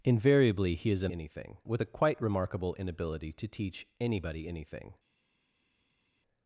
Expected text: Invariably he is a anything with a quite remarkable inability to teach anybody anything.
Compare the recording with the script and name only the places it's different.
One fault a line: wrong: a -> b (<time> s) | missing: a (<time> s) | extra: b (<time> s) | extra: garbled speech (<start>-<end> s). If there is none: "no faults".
no faults